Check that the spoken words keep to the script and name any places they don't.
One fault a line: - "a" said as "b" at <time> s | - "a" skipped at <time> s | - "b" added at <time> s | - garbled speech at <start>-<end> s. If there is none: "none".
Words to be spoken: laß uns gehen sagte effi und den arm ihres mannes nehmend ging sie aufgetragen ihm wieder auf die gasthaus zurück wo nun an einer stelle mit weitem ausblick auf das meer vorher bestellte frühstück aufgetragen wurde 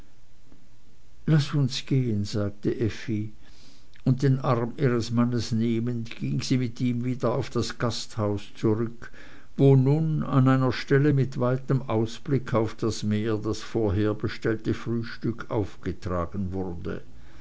- "aufgetragen" said as "mit" at 6.6 s
- "die" said as "das" at 7.5 s
- "das" added at 13.4 s